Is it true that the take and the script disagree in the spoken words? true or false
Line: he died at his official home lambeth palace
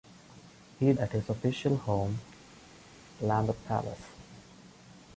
true